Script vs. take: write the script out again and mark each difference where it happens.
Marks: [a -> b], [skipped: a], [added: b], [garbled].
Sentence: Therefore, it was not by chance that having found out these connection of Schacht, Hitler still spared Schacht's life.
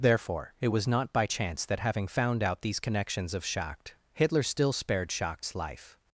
Therefore, it was not by chance that having found out these [connection -> connections] of Schacht, Hitler still spared Schacht's life.